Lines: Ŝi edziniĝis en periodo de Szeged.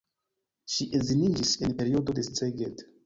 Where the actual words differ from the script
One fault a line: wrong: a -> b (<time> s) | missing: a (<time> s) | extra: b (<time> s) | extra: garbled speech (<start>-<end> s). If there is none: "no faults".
no faults